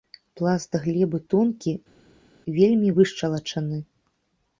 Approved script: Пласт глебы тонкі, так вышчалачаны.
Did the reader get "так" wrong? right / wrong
wrong